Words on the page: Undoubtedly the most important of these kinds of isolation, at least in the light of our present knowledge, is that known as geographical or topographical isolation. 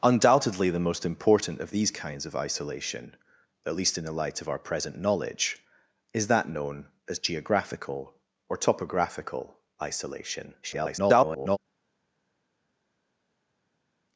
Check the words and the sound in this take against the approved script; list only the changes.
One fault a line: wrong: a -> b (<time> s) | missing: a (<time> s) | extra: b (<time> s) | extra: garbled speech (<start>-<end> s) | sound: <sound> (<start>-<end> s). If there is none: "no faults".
extra: garbled speech (10.6-11.6 s)